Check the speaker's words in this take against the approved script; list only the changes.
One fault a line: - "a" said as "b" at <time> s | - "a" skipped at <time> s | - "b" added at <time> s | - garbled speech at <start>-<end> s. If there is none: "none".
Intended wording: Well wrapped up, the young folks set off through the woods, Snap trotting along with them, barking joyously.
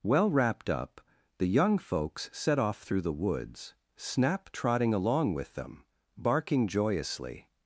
none